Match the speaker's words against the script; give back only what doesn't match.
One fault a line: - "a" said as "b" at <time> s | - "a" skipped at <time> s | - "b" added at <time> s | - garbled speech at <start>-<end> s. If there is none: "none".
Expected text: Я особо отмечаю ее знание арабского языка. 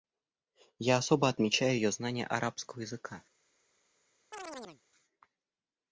none